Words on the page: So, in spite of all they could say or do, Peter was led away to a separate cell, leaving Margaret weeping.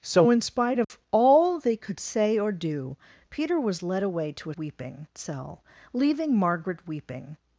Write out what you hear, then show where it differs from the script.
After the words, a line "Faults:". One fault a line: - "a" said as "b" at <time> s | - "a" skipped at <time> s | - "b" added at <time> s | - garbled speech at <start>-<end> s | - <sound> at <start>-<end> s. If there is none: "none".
So, in spite of all they could say or do, Peter was led away to a weeping cell, leaving Margaret weeping.
Faults:
- dropout at 0.8-0.9 s
- "separate" said as "weeping" at 4.6 s